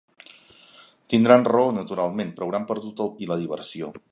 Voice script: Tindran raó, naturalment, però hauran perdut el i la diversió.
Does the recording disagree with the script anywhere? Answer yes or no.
no